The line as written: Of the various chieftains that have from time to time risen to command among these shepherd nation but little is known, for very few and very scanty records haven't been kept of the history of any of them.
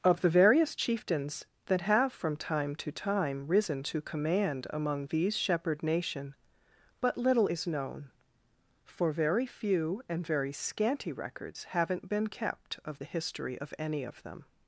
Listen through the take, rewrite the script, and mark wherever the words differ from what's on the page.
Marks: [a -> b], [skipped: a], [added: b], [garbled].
Of the various chieftains that have from time to time risen to command among these shepherd nation but little is known, for very few and very scanty records haven't been kept of the history of any of them.